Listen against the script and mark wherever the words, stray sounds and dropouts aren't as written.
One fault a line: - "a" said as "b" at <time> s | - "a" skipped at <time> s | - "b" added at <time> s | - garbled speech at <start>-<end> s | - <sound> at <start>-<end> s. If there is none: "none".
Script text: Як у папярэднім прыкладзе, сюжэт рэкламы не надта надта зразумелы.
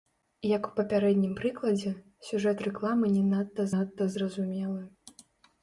none